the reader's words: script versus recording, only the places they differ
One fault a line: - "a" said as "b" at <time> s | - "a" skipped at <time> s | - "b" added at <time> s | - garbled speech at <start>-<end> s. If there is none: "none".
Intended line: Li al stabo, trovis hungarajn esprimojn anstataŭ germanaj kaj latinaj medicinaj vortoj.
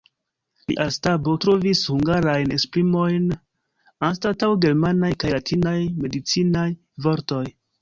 none